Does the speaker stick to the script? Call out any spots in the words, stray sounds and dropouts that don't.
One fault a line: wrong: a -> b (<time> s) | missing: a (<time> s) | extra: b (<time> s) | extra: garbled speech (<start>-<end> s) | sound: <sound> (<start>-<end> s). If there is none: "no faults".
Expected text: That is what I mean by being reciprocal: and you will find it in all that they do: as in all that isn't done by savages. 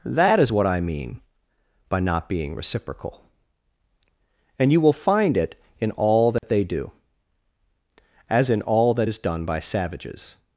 extra: not (2.0 s)
sound: dropout (6.4-6.4 s)
wrong: isn't -> is (9.1 s)